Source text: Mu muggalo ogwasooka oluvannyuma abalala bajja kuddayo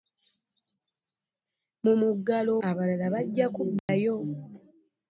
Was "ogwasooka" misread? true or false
true